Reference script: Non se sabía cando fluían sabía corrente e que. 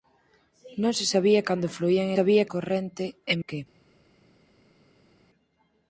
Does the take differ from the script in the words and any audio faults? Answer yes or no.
no